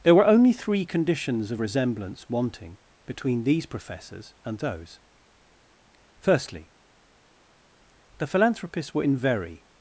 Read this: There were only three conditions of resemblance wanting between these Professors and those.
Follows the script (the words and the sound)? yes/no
no